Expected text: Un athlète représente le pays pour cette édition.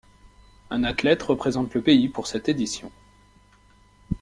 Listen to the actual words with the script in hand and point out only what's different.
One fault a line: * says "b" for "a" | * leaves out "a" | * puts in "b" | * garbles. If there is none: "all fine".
all fine